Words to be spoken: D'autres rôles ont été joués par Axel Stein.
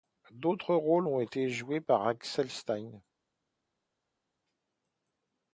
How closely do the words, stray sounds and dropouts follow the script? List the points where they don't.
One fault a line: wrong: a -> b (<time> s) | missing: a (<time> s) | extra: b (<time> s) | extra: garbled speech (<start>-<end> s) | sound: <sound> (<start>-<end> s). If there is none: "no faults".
no faults